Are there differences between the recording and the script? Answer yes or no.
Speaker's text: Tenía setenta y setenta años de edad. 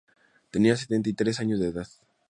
yes